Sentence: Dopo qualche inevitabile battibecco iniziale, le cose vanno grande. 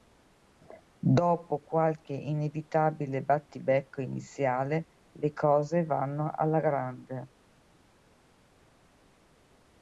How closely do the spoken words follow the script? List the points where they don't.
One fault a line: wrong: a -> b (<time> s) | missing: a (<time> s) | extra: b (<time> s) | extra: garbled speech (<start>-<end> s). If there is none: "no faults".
extra: alla (6.3 s)